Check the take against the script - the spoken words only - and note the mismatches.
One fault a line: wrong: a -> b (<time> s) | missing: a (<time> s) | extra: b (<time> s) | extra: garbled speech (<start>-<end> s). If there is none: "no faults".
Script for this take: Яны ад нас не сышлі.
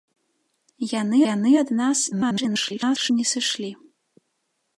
extra: яны (1.3 s)
extra: garbled speech (2.1-3.1 s)